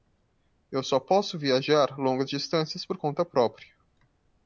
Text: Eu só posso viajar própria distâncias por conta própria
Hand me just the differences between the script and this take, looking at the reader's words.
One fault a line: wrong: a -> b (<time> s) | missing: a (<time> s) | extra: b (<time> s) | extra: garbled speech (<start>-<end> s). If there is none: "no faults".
wrong: própria -> longas (2.0 s)